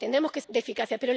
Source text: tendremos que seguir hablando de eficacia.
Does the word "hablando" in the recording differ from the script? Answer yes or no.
yes